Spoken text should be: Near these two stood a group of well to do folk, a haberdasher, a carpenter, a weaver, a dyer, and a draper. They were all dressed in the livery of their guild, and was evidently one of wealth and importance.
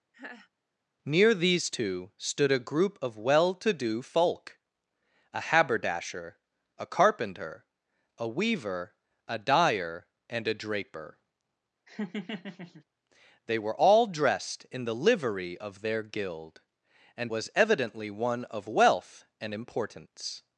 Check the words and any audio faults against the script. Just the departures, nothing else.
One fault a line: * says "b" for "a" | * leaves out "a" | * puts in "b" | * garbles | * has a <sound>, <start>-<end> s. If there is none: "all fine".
* has a laugh, 0.1-0.5 s
* has a laugh, 11.9-12.8 s